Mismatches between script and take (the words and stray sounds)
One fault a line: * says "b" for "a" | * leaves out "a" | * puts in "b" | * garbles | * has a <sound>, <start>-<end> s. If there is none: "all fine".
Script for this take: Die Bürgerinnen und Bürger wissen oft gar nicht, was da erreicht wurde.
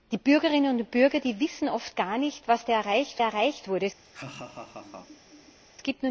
* puts in "erreicht"
* has a laugh, 4.0-5.6 s